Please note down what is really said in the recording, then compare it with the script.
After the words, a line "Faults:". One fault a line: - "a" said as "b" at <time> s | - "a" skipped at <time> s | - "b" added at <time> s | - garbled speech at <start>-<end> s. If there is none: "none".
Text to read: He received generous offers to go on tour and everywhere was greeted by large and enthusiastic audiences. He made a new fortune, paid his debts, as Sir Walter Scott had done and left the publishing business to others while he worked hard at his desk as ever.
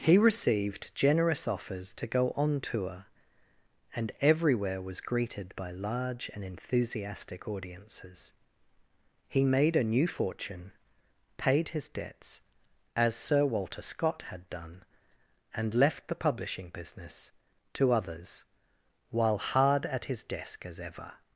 He received generous offers to go on tour and everywhere was greeted by large and enthusiastic audiences. He made a new fortune, paid his debts, as Sir Walter Scott had done and left the publishing business to others while hard at his desk as ever.
Faults:
- "he worked" skipped at 19.4 s